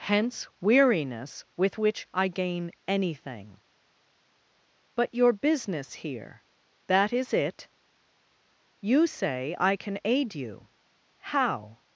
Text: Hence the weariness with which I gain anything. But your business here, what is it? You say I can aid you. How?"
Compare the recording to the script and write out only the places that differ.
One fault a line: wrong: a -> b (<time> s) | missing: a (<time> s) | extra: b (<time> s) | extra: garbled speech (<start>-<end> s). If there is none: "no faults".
missing: the (0.5 s)
wrong: what -> that (6.9 s)